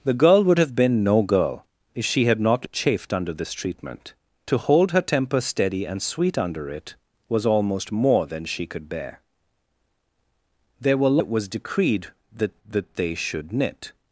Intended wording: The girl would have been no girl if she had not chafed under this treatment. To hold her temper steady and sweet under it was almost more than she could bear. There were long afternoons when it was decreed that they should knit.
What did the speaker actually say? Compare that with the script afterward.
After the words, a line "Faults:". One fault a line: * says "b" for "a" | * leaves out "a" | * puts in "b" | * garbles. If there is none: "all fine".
The girl would have been no girl if she had not chafed under this treatment. To hold her temper steady and sweet under it was almost more than she could bear. There were it was decreed that that they should knit.
Faults:
* leaves out "long afternoons when"
* puts in "that"